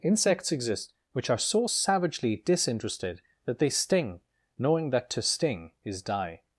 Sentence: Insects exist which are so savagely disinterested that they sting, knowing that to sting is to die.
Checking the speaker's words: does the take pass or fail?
fail